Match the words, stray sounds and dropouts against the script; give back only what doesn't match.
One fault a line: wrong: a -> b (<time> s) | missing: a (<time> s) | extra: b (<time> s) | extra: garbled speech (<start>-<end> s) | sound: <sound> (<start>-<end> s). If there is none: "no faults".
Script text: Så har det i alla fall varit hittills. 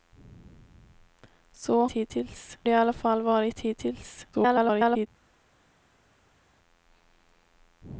wrong: har -> hittills (1.9 s)
extra: garbled speech (4.3-5.1 s)